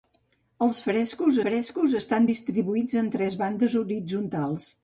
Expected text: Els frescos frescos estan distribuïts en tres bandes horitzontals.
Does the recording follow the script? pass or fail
pass